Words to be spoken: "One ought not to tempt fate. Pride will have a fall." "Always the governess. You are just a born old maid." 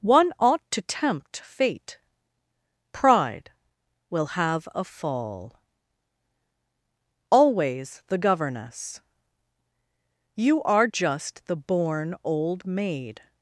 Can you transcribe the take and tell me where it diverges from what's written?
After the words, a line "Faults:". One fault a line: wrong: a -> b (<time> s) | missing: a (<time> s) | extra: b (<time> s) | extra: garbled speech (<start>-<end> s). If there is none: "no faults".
"One ought to tempt fate. Pride will have a fall." "Always the governess. You are just the born old maid."
Faults:
missing: not (0.6 s)
wrong: a -> the (11.5 s)